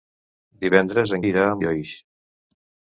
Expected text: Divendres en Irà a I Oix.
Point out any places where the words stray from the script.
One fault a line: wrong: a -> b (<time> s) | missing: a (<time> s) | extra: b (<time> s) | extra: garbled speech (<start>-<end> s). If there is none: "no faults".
no faults